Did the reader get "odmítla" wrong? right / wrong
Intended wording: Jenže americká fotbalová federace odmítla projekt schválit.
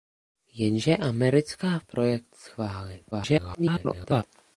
wrong